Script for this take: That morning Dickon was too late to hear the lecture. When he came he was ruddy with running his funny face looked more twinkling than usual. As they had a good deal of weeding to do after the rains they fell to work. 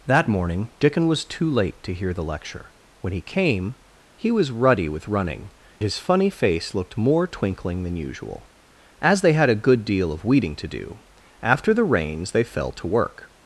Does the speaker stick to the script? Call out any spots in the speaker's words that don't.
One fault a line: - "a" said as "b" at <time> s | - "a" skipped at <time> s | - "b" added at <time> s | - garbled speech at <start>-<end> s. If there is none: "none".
none